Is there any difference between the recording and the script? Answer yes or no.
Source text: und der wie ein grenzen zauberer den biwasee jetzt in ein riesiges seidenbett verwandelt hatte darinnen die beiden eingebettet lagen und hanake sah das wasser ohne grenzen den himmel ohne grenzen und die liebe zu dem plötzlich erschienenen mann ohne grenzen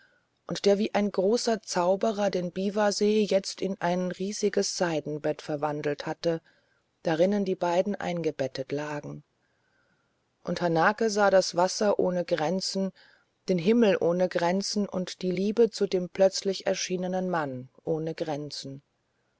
yes